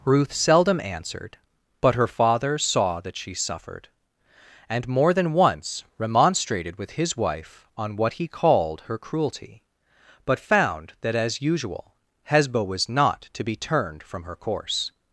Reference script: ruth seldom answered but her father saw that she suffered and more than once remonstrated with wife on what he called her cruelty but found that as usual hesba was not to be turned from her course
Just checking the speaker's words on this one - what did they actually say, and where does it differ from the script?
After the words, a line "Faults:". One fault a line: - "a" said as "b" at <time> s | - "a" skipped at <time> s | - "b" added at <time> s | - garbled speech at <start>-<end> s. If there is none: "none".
ruth seldom answered but her father saw that she suffered and more than once remonstrated with his wife on what he called her cruelty but found that as usual hesba was not to be turned from her course
Faults:
- "his" added at 6.9 s